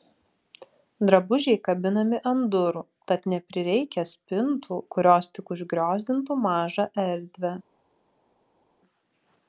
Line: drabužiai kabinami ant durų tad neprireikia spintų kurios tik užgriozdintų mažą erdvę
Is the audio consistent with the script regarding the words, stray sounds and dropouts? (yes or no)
yes